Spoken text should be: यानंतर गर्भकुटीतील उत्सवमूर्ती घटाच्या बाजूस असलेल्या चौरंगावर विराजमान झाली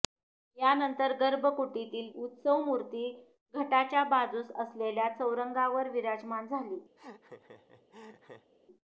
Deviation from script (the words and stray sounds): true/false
true